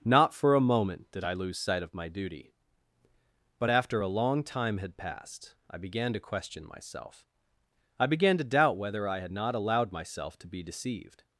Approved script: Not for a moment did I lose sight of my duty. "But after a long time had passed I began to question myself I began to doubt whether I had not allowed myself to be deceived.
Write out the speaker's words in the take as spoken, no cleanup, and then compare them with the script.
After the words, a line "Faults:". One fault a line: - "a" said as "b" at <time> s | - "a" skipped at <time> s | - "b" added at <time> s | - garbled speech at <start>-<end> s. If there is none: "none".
Not for a moment did I lose sight of my duty. "But after a long time had passed I began to question myself I began to doubt whether I had not allowed myself to be deceived.
Faults:
none